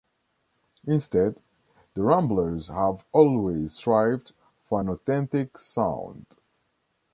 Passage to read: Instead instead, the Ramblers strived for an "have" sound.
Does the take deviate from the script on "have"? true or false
true